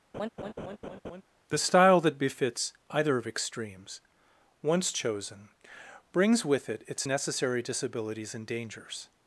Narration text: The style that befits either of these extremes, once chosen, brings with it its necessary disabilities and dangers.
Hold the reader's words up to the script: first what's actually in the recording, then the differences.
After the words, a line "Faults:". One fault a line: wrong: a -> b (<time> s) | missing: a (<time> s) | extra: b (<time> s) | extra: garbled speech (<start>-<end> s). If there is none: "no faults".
The style that befits either of extremes, once chosen, brings with it its necessary disabilities and dangers.
Faults:
missing: these (3.3 s)